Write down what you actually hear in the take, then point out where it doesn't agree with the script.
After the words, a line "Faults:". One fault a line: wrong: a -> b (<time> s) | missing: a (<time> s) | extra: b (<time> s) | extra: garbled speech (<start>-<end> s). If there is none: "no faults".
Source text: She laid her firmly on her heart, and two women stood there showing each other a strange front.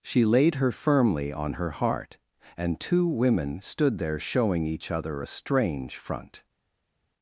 She laid her firmly on her heart, and two women stood there showing each other a strange front.
Faults:
no faults